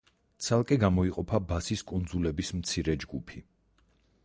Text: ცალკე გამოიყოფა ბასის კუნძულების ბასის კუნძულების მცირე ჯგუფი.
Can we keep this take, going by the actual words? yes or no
no